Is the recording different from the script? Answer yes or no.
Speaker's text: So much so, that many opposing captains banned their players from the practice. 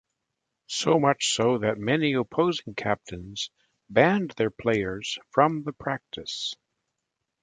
no